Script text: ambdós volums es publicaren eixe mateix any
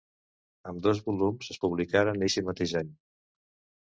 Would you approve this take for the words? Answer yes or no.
yes